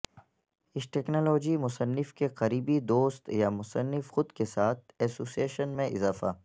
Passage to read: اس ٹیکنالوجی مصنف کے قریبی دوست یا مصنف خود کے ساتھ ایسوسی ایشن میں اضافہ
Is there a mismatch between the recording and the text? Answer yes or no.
no